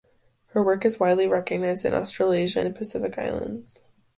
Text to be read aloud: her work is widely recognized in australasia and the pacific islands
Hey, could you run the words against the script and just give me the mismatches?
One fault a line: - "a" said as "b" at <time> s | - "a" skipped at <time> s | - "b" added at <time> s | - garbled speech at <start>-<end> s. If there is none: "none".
- "and" skipped at 2.6 s